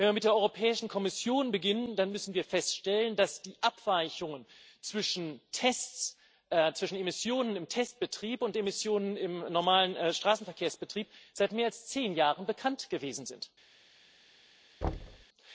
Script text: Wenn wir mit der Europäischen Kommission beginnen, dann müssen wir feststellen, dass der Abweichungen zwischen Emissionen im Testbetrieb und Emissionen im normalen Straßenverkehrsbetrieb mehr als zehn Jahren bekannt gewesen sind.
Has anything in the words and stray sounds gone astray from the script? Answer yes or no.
yes